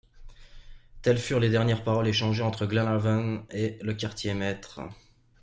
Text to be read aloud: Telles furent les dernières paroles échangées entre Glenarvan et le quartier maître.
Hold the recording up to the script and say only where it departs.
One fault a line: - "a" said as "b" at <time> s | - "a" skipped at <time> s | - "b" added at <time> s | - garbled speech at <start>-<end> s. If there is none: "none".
none